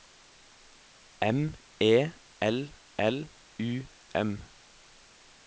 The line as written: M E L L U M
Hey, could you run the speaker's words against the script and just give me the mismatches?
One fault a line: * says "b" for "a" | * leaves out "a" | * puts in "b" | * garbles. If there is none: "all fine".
all fine